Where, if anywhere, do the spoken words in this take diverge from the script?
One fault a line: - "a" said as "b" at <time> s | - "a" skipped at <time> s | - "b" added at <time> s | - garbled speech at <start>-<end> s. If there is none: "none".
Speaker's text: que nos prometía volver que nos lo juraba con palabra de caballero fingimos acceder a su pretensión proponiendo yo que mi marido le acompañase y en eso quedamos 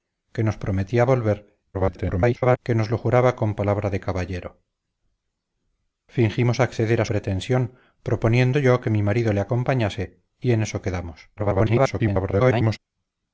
- garbled speech at 1.7-2.6 s
- "su" skipped at 7.1 s
- garbled speech at 11.4-12.8 s